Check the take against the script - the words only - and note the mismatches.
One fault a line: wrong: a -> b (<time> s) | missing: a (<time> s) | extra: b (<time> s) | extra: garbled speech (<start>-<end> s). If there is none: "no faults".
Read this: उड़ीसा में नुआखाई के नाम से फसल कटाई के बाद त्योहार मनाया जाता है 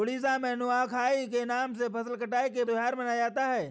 missing: बाद (2.6 s)